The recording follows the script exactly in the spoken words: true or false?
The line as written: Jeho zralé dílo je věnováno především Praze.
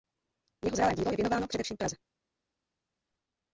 true